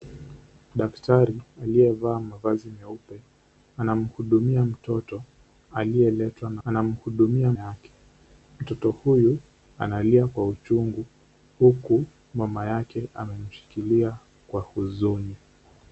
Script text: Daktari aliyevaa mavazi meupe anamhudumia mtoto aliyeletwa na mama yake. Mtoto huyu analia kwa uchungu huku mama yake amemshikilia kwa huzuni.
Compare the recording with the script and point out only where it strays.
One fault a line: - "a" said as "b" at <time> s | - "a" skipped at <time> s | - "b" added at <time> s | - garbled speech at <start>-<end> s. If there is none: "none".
- "mama" said as "anamhudumia" at 6.6 s